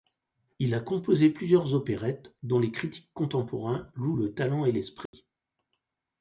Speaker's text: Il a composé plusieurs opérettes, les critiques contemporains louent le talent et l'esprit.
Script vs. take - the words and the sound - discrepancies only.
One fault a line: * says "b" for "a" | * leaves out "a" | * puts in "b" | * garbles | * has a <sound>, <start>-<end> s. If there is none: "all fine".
* puts in "dont"
* has a dropout, 5.1-5.1 s